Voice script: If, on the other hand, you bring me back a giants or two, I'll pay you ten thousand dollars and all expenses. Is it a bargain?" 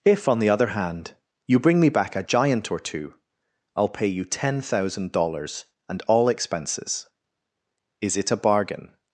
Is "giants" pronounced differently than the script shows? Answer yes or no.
yes